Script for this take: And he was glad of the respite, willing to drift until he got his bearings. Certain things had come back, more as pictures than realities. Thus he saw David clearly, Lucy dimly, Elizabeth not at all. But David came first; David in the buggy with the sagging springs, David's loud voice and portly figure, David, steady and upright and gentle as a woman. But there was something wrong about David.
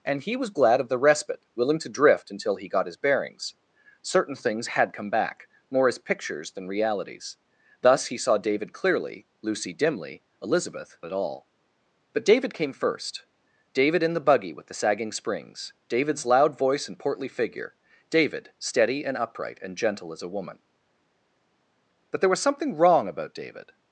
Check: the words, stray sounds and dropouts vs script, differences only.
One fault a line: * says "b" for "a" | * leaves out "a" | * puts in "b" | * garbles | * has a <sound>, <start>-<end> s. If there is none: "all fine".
* leaves out "not"